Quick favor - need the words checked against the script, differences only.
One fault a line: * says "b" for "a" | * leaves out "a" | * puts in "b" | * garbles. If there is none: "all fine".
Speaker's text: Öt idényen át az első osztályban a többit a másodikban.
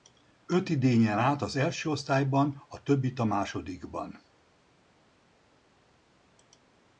all fine